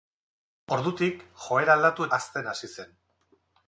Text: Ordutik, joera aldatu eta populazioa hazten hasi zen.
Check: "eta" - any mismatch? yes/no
yes